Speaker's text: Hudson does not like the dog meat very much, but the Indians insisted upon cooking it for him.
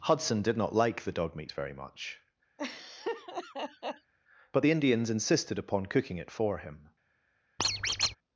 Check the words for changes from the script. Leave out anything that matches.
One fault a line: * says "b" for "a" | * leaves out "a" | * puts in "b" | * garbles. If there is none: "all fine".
* says "did" for "does"